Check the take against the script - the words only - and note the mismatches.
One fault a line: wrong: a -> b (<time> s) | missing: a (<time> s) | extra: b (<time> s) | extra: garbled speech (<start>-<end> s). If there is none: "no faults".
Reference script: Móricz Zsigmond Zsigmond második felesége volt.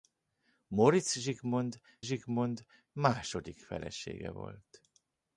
no faults